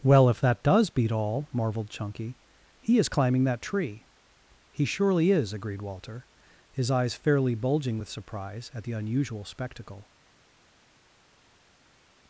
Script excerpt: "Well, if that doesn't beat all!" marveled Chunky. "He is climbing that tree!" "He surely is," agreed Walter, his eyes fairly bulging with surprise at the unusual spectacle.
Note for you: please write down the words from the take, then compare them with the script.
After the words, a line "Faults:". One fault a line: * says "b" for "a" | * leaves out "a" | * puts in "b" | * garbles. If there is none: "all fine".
"Well, if that does beat all!" marveled Chunky. "He is climbing that tree!" "He surely is," agreed Walter, his eyes fairly bulging with surprise at the unusual spectacle.
Faults:
* says "does" for "doesn't"